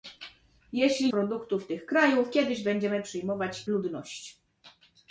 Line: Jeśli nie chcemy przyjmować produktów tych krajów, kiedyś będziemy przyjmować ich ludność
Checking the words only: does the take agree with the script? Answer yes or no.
no